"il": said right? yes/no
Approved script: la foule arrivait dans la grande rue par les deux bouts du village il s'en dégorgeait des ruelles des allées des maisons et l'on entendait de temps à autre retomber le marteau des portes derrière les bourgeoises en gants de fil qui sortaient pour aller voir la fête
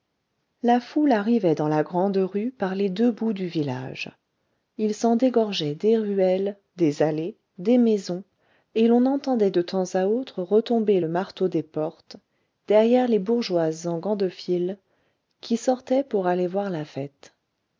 yes